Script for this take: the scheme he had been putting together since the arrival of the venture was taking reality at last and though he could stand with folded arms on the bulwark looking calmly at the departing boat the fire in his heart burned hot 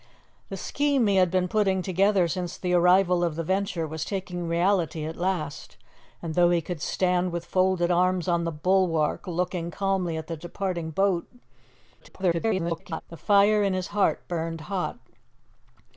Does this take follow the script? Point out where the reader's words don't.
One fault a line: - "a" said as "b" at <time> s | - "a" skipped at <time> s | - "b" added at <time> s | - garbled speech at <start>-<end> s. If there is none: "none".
- garbled speech at 12.0-13.0 s